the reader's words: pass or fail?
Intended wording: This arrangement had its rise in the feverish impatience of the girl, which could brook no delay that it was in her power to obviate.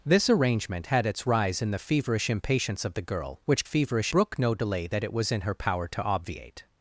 fail